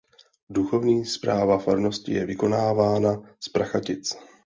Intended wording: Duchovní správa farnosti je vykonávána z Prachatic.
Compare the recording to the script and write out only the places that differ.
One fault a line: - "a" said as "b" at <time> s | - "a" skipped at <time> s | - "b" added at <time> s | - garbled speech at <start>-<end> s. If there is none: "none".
none